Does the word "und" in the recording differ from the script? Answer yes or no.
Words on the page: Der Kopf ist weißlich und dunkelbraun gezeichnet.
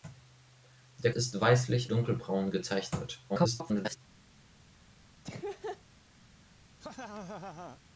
yes